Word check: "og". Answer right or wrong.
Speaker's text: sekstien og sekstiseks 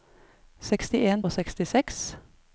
right